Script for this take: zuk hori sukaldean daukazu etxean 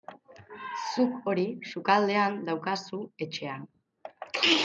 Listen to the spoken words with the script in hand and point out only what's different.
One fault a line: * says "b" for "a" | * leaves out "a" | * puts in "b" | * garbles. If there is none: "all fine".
all fine